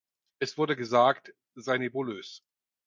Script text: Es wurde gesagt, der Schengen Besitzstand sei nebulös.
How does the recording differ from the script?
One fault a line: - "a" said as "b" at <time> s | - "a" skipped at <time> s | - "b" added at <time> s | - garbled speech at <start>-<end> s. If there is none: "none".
- "der Schengen Besitzstand" skipped at 1.4 s